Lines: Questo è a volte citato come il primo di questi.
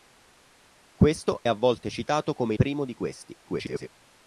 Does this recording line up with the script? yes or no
no